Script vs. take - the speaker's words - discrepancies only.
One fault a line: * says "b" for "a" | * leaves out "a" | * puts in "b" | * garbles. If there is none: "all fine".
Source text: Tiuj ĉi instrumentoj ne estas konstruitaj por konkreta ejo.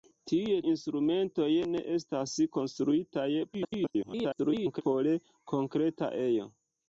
* leaves out "ĉi"
* garbles